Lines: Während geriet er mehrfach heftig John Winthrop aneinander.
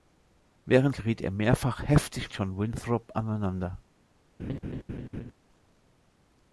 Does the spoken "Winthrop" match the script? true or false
true